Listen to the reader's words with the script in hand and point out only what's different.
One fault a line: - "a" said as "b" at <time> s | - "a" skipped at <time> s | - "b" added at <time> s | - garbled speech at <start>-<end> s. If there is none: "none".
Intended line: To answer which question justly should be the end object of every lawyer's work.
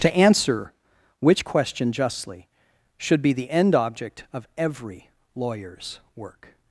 none